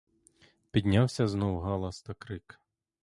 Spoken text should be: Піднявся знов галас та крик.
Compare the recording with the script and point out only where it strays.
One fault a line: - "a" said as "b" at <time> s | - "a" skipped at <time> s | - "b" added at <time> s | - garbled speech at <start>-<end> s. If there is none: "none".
none